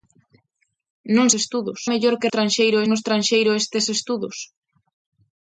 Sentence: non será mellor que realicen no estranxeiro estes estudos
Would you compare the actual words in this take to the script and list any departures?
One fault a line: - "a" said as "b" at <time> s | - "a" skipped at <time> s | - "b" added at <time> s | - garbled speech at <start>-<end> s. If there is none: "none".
- "será" said as "estudos" at 1.4 s
- "realicen" said as "estranxeiro" at 2.3 s